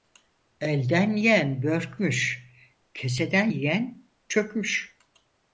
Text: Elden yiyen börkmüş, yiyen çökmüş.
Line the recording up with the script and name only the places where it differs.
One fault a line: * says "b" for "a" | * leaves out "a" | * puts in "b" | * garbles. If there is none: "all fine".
* puts in "keseden"